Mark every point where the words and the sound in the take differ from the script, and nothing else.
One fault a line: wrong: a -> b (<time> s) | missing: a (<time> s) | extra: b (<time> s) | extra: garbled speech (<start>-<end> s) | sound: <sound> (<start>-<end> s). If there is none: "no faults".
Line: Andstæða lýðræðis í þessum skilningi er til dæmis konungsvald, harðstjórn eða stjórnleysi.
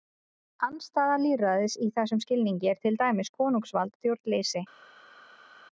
missing: harðstjórn eða (4.0 s)